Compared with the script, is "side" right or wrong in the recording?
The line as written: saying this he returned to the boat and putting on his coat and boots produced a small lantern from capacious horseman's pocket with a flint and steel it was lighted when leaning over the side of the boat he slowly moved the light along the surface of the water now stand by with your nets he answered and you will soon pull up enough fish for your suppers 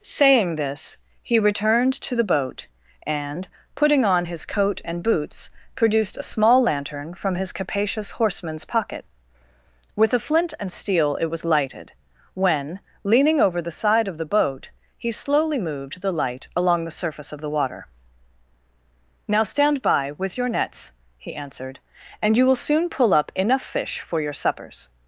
right